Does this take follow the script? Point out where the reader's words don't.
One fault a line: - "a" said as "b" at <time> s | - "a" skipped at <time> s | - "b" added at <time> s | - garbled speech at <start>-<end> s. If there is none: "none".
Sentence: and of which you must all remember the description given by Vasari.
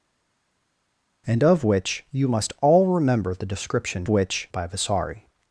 - "given" said as "which" at 4.1 s